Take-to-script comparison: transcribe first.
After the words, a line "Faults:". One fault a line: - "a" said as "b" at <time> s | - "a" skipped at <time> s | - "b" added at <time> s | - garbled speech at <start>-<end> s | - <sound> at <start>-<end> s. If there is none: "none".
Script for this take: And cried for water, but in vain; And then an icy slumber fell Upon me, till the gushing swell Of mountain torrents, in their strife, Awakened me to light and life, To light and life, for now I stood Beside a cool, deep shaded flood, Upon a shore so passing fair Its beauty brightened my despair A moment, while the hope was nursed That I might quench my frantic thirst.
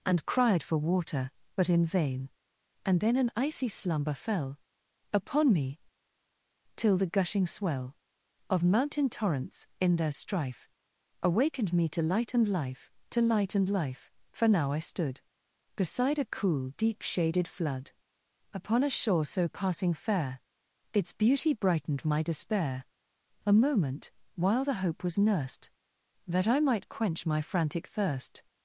And cried for water, but in vain; And then an icy slumber fell Upon me, till the gushing swell Of mountain torrents, in their strife, Awakened me to light and life, To light and life, for now I stood Beside a cool, deep shaded flood, Upon a shore so passing fair Its beauty brightened my despair A moment, while the hope was nursed That I might quench my frantic thirst.
Faults:
none